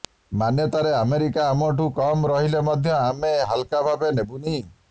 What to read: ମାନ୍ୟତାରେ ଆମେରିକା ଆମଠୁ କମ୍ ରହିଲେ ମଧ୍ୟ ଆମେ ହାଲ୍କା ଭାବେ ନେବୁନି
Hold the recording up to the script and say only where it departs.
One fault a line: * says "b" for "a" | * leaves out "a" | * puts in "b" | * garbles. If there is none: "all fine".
all fine